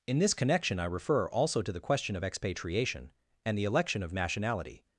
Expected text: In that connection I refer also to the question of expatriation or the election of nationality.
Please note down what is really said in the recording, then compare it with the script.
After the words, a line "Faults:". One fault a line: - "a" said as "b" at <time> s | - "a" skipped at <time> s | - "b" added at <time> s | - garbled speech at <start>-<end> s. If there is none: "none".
In this connection I refer also to the question of expatriation and the election of nationality.
Faults:
- "that" said as "this" at 0.2 s
- "or" said as "and" at 3.4 s